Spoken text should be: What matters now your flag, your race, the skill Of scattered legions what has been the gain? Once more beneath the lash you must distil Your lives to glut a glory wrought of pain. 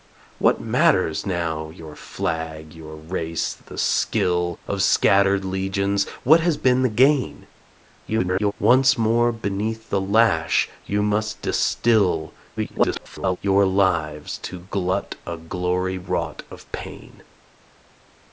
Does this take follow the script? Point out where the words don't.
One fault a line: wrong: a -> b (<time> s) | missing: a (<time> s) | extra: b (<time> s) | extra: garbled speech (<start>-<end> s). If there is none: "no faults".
extra: garbled speech (8.1-8.5 s)
extra: garbled speech (12.6-13.4 s)